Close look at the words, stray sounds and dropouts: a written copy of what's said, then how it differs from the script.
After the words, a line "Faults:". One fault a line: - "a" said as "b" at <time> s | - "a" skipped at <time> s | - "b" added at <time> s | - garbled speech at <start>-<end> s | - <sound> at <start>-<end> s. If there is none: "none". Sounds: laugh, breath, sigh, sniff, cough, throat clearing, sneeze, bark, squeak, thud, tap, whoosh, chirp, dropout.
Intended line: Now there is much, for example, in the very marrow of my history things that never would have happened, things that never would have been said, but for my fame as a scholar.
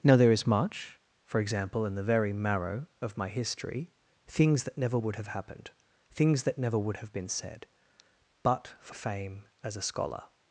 Now there is much, for example, in the very marrow of my history things that never would have happened, things that never would have been said, but for fame as a scholar.
Faults:
- "my" skipped at 9.0 s